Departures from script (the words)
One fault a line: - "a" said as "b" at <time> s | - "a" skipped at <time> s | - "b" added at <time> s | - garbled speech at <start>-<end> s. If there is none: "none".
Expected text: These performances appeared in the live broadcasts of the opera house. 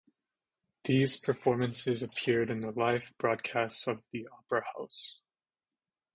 none